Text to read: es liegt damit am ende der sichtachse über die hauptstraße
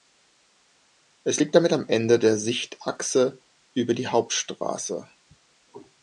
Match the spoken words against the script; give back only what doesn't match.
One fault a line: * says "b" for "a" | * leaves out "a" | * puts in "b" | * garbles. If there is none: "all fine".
all fine